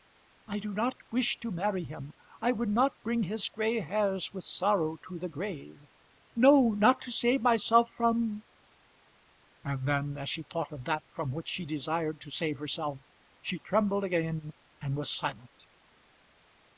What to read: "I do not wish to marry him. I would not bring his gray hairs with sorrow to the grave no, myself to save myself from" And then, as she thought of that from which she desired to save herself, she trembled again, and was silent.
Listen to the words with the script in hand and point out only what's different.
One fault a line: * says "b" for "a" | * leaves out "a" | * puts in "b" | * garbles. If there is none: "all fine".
* says "not" for "myself"